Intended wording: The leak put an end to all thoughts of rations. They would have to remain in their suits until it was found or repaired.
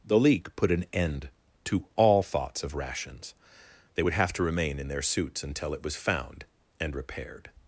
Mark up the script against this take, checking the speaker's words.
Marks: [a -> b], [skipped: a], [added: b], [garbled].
The leak put an end to all thoughts of rations. They would have to remain in their suits until it was found [or -> and] repaired.